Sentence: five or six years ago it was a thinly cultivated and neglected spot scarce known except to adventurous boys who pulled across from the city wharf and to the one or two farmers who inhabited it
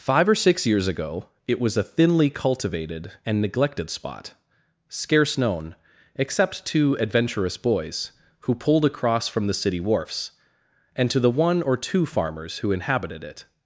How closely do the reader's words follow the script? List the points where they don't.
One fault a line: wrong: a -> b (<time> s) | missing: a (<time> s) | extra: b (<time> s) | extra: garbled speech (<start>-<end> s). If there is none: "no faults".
wrong: wharf -> wharfs (9.8 s)